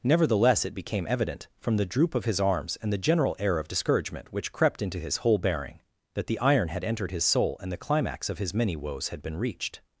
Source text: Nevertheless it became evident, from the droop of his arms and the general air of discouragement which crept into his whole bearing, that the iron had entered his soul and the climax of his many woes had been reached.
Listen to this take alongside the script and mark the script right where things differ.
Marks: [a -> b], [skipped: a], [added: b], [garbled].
Nevertheless it became evident, from the droop of his arms and the general air of discouragement which crept into his whole bearing, that the iron had entered his soul and the climax of his many woes had been reached.